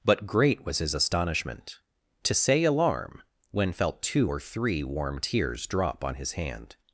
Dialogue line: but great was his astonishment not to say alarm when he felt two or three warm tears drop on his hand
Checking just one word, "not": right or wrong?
wrong